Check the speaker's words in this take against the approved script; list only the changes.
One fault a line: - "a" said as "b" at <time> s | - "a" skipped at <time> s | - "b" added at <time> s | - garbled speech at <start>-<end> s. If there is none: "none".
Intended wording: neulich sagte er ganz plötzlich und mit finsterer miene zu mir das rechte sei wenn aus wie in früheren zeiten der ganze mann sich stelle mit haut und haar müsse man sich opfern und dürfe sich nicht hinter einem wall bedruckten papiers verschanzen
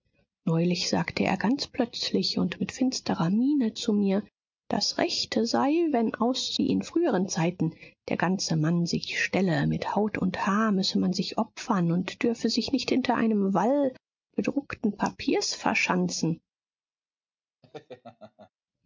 none